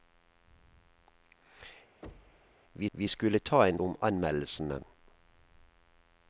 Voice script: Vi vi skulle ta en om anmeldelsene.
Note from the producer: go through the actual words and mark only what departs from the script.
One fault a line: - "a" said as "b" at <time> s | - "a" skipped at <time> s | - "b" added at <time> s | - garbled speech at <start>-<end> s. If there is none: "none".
none